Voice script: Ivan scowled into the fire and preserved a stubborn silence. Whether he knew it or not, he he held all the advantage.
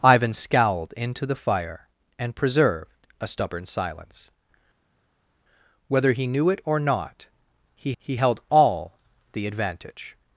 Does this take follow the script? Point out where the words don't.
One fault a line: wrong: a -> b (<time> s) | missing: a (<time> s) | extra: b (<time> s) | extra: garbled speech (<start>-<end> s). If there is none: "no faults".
no faults